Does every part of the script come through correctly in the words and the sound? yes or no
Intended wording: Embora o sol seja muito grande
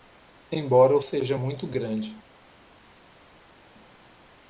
no